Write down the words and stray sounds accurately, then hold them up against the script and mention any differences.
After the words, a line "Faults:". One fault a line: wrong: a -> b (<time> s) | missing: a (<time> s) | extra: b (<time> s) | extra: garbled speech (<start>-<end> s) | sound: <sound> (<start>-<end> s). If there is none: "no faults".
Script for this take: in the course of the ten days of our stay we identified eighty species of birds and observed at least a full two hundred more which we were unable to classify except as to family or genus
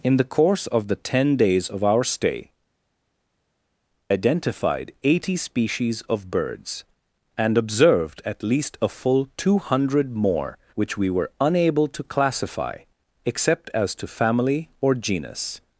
in the course of the ten days of our stay identified eighty species of birds and observed at least a full two hundred more which we were unable to classify except as to family or genus
Faults:
missing: we (2.5 s)